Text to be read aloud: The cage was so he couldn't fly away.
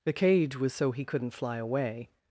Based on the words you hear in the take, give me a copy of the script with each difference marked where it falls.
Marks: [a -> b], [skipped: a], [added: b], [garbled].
The cage was so he couldn't fly away.